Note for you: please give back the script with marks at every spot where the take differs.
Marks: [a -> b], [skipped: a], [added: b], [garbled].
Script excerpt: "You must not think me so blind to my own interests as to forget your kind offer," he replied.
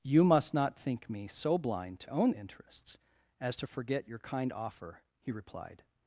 "You must not think me so blind to [skipped: my] own interests as to forget your kind offer," he replied.